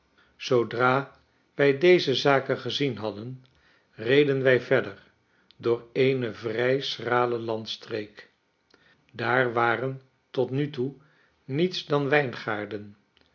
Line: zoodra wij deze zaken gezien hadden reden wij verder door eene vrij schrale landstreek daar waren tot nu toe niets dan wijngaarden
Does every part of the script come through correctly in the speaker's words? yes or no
yes